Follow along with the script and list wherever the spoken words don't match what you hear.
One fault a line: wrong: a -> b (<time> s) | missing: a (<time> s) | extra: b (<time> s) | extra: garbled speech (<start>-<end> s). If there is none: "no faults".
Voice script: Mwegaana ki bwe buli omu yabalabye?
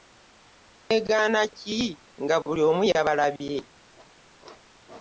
wrong: bwe -> nga (2.2 s)